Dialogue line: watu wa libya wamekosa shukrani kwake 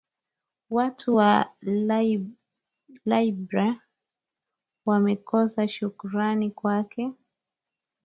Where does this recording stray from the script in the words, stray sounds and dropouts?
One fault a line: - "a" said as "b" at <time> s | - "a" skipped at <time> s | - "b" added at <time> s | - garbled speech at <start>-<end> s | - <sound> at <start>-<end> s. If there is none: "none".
none